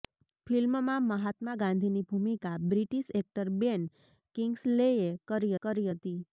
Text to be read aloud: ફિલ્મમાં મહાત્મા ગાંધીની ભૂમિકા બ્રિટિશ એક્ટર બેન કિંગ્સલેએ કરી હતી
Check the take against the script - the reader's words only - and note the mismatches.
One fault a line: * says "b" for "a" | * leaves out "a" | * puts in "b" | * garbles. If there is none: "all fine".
* puts in "કરી"